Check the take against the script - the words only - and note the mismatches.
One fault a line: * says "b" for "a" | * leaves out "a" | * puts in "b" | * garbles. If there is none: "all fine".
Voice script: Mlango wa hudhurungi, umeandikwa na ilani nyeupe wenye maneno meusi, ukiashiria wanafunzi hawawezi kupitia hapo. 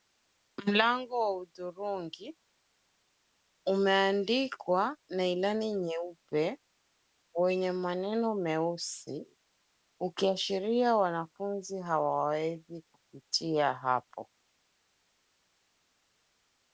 all fine